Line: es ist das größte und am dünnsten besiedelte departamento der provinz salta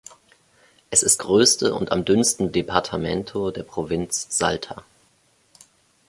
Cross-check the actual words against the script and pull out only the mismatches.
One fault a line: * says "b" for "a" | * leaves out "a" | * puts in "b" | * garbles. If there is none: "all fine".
* leaves out "das"
* leaves out "besiedelte"